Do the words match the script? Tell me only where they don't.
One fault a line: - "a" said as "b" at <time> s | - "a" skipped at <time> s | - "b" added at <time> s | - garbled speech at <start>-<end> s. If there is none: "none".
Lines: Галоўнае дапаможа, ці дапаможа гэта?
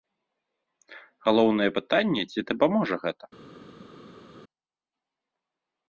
- "дапаможа" said as "пытанне" at 1.8 s